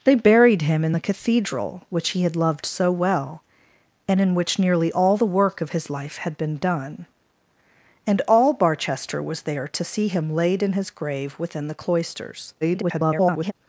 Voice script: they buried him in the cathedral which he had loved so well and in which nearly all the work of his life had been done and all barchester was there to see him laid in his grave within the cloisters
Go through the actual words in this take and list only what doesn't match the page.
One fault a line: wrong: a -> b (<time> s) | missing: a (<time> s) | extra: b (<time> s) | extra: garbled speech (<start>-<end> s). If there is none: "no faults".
extra: garbled speech (12.6-13.5 s)